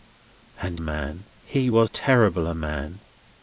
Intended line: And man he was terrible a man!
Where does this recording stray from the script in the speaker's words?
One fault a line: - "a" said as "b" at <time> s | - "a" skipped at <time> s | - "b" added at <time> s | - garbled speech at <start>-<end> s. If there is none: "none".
none